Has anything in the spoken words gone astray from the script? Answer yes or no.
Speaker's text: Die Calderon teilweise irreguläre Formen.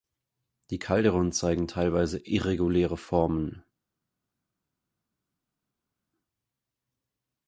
yes